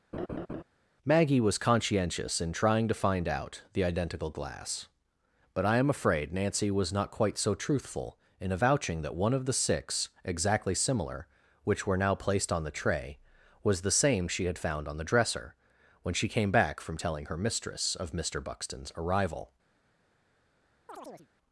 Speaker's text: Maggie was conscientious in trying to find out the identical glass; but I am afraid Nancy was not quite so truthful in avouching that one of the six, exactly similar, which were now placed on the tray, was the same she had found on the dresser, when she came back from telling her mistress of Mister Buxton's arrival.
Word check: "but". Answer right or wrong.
right